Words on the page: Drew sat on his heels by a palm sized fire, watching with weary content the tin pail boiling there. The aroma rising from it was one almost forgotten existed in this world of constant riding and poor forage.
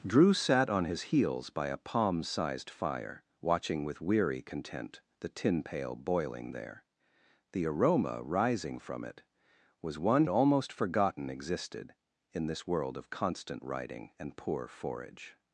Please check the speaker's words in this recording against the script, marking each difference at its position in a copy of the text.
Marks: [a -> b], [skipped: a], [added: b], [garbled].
Drew sat on his heels by a palm sized fire, watching with weary content the tin pail boiling there. The aroma rising from it was one almost forgotten existed in this world of constant riding and poor forage.